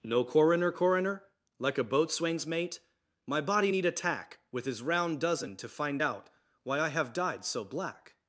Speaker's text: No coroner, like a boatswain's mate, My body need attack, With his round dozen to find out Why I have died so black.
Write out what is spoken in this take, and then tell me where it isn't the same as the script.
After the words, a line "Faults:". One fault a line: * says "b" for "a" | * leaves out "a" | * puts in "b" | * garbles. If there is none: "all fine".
No coroner coroner, like a boatswain's mate, My body need attack, With his round dozen to find out Why I have died so black.
Faults:
* puts in "coroner"